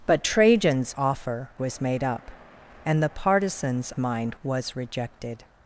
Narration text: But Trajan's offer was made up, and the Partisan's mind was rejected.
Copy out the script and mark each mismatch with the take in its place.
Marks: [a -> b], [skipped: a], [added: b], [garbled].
But Trajan's offer was made up, and the Partisan's mind was rejected.